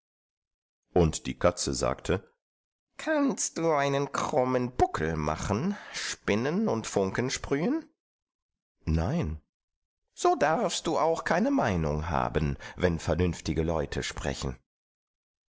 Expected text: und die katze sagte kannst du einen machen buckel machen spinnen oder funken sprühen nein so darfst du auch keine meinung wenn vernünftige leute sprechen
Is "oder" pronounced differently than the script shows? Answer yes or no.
yes